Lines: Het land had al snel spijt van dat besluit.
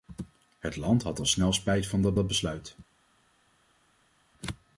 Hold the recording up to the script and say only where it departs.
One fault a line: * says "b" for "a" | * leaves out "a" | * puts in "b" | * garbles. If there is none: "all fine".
* puts in "dat"